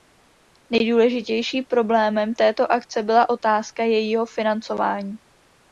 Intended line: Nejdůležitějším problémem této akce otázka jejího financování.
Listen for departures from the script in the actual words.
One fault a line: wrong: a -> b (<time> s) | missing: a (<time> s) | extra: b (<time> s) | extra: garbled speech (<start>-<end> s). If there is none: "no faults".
extra: byla (3.0 s)